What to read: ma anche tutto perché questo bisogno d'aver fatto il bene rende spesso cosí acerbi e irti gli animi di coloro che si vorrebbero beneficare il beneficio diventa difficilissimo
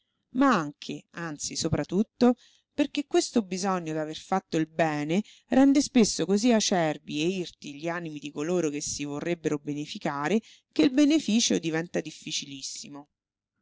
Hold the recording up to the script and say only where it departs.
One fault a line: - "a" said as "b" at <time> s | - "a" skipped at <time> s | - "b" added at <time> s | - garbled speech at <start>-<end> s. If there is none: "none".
- "anzi sopra" added at 1.1 s
- "che" added at 10.7 s